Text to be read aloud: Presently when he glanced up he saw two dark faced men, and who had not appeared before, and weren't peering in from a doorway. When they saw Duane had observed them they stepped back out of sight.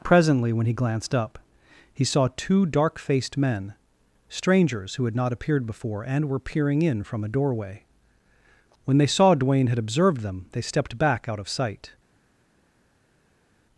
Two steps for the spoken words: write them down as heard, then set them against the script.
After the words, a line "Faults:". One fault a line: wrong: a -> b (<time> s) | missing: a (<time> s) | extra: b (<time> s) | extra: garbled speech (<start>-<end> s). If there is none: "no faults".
Presently when he glanced up he saw two dark faced men, strangers who had not appeared before, and were peering in from a doorway. When they saw Duane had observed them they stepped back out of sight.
Faults:
wrong: and -> strangers (4.3 s)
wrong: weren't -> were (6.3 s)